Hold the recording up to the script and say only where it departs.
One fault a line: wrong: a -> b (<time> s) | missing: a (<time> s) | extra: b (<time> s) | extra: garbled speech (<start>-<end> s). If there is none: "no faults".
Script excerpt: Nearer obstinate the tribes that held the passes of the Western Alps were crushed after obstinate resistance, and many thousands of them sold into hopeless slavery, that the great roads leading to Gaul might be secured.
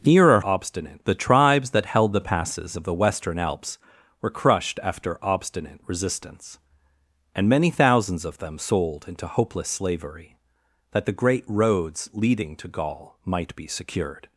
no faults